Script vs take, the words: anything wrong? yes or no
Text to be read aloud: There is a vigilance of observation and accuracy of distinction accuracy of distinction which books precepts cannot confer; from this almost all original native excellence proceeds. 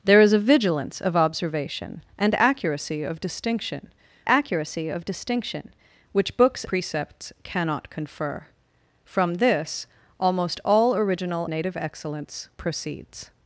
no